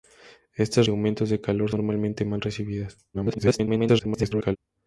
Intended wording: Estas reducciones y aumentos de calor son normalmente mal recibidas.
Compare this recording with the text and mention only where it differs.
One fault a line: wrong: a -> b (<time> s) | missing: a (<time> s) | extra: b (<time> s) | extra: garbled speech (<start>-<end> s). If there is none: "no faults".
missing: reducciones (0.9 s)
missing: son (1.7 s)
extra: garbled speech (3.1-4.6 s)